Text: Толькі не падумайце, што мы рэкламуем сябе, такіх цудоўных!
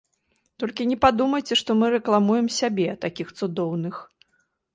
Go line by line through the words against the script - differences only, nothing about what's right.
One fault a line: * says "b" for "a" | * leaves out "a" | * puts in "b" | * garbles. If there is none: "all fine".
all fine